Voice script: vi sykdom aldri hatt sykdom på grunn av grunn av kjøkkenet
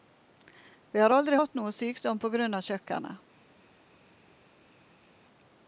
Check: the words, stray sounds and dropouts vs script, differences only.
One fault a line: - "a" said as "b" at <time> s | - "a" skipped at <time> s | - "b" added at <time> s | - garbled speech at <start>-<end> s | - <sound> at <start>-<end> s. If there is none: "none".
- "sykdom" said as "har" at 1.0 s
- "noe" added at 1.6 s
- "grunn av" skipped at 2.7 s